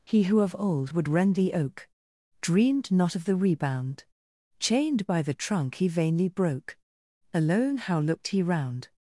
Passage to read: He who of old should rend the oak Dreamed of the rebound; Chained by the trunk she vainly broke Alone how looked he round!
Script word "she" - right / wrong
wrong